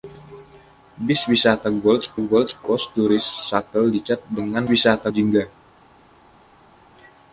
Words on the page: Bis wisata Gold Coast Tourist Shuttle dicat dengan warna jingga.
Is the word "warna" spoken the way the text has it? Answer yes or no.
no